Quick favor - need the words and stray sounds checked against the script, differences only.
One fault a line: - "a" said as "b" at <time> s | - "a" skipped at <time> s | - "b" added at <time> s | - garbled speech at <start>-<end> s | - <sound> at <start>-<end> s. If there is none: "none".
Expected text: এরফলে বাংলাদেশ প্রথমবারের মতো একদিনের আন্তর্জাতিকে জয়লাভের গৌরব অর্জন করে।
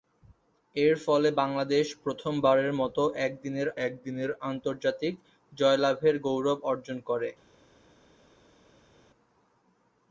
- "একদিনের" added at 3.9 s